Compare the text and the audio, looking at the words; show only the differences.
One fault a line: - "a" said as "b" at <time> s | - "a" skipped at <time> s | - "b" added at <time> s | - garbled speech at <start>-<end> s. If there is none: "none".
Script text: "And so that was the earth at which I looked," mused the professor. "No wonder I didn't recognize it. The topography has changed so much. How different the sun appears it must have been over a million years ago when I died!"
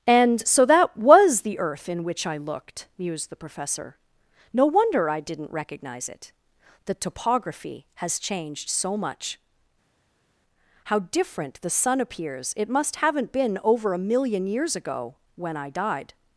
- "at" said as "in" at 1.9 s
- "have" said as "haven't" at 13.0 s